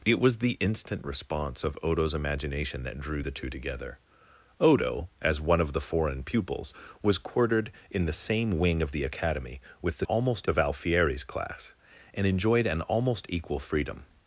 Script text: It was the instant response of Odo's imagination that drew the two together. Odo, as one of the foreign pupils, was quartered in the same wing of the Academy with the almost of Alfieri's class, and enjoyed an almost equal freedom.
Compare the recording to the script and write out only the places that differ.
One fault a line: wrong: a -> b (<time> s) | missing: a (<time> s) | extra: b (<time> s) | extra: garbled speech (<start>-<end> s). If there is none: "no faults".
no faults